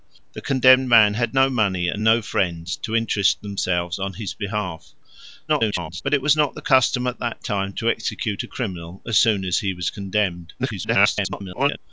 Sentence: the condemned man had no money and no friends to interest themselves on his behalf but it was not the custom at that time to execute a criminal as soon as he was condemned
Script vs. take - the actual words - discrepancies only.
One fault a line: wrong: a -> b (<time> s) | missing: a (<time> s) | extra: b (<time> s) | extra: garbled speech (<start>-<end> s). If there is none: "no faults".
extra: garbled speech (5.5-6.0 s)
extra: garbled speech (10.6-11.8 s)